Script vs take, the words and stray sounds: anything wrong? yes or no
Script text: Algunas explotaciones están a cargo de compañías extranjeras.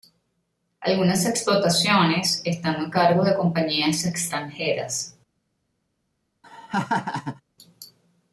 yes